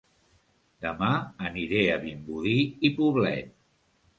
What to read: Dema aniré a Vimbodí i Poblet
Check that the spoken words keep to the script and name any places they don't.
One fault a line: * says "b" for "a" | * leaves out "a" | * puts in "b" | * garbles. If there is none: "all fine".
all fine